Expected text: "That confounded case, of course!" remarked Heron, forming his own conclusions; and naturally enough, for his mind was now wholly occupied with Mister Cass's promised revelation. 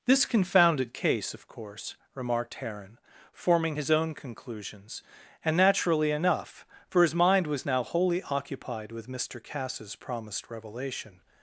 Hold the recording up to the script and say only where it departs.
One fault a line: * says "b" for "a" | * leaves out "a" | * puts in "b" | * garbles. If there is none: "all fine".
* says "This" for "That"